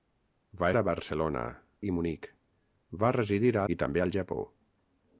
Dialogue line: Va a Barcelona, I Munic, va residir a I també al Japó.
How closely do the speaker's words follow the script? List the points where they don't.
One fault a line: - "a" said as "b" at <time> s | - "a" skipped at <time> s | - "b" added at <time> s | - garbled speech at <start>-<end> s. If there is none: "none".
none